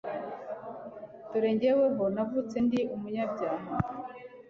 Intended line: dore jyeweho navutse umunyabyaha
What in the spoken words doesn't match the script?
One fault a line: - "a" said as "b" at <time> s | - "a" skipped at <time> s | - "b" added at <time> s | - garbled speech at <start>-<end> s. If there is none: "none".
- "ndi" added at 2.6 s